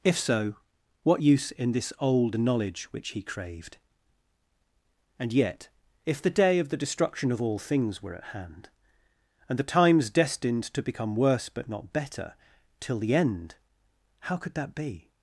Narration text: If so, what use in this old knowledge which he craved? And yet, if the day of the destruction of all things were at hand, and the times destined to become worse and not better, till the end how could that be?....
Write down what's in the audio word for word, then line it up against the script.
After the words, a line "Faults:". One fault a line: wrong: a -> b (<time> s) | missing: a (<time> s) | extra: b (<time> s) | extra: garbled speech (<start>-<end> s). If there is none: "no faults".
If so, what use in this old knowledge which he craved? And yet, if the day of the destruction of all things were at hand, and the times destined to become worse but not better, till the end how could that be?....
Faults:
wrong: and -> but (11.5 s)